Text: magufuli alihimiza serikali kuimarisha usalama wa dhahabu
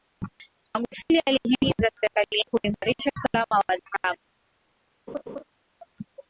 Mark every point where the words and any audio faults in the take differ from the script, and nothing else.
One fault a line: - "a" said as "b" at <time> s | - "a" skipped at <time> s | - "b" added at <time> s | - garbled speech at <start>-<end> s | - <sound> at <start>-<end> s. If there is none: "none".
- laugh at 5.1-5.4 s